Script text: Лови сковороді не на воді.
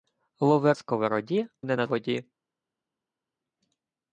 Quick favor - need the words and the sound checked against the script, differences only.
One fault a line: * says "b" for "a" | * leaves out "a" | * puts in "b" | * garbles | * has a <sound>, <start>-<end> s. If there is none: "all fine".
all fine